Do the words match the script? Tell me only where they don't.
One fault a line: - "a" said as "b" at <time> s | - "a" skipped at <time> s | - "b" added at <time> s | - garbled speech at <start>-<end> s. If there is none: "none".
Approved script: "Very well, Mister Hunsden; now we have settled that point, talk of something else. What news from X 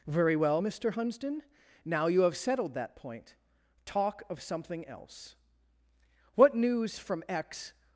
- "we" said as "you" at 2.1 s